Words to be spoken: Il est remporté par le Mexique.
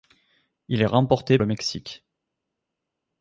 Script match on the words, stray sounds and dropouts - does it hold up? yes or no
no